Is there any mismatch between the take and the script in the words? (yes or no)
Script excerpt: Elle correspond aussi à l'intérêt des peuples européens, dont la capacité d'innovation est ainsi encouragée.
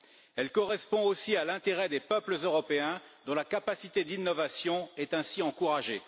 no